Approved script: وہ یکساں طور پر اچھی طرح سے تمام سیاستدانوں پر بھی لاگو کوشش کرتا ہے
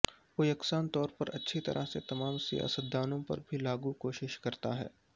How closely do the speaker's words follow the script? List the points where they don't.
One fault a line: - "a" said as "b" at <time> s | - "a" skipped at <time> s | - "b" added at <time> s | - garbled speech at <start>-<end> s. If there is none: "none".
none